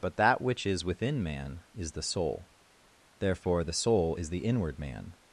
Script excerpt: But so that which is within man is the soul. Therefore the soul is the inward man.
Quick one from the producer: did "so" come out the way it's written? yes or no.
no